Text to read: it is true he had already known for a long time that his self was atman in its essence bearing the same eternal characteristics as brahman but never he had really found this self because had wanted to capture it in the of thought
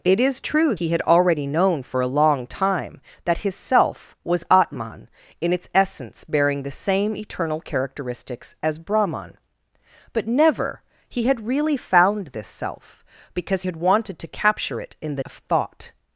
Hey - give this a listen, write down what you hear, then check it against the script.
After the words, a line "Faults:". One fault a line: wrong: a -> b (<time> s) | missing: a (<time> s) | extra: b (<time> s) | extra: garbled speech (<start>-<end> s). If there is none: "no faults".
it is true he had already known for a long time that his self was atman in its essence bearing the same eternal characteristics as brahman but never he had really found this self because had wanted to capture it in the of thought
Faults:
no faults